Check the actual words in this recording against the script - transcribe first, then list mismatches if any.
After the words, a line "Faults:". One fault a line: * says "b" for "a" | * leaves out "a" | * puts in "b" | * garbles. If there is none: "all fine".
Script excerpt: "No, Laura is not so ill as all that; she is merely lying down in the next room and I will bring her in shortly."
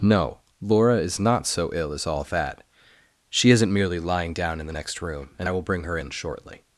"No, Laura is not so ill as all that; she isn't merely lying down in the next room and I will bring her in shortly."
Faults:
* says "isn't" for "is"